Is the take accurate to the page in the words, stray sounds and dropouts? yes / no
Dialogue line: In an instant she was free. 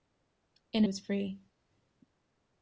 no